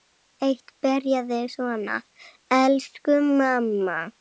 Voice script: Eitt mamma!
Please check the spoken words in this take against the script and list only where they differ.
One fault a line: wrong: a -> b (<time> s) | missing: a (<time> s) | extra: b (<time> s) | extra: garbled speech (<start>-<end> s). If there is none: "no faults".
extra: byrjaði svona Elsku (0.9 s)